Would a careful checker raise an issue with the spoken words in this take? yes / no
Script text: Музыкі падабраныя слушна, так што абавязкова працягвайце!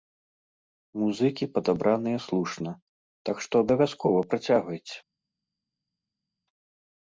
no